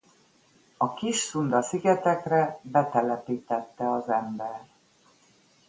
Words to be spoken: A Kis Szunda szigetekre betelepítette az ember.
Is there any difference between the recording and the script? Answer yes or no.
no